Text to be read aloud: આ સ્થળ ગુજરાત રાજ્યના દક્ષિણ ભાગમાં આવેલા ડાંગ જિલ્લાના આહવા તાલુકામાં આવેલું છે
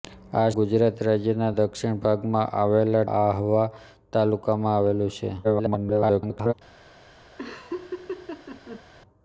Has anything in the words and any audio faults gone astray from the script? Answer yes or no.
yes